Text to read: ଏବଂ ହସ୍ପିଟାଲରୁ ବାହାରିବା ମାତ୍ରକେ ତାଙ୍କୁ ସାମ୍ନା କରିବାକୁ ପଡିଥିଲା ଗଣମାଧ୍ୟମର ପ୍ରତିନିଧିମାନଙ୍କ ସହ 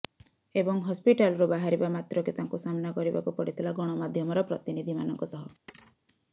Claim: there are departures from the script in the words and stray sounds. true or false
true